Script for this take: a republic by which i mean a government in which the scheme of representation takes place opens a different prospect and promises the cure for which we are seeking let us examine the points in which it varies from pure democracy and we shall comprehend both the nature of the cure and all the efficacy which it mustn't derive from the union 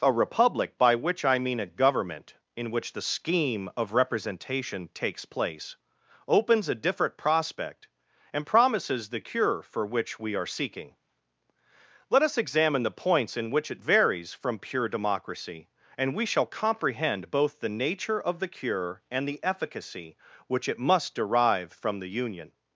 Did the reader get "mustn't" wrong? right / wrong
wrong